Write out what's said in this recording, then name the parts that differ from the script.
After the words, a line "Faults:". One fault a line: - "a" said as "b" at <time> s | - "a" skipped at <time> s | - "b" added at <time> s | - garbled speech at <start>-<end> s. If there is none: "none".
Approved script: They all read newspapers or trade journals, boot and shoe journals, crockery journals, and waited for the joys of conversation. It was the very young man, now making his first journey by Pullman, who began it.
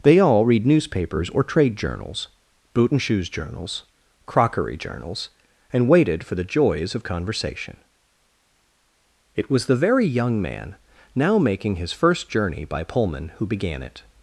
They all read newspapers or trade journals, boot and shoes journals, crockery journals, and waited for the joys of conversation. It was the very young man, now making his first journey by Pullman, who began it.
Faults:
- "shoe" said as "shoes" at 3.0 s